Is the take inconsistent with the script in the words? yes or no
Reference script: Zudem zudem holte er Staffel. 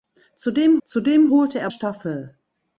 no